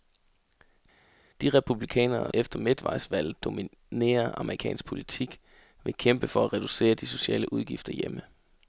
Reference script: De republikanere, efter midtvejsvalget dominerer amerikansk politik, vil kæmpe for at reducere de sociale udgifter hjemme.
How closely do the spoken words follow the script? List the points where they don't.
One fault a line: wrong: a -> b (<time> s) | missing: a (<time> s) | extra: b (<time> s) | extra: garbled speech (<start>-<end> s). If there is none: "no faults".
no faults